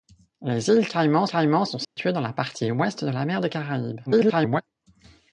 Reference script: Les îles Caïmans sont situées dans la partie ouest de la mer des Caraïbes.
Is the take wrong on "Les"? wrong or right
right